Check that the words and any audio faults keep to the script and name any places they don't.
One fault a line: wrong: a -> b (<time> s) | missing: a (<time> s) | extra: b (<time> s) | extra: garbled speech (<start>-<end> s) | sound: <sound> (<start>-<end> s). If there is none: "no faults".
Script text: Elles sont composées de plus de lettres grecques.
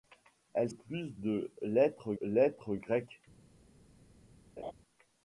wrong: sont composées -> plus (0.7 s)
wrong: plus de -> lettres (1.6 s)
sound: laugh (4.6-4.7 s)